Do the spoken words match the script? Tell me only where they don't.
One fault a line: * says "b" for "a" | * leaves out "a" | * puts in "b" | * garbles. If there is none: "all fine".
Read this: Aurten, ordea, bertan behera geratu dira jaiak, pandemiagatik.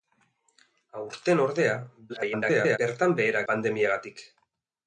* garbles
* leaves out "geratu dira jaiak"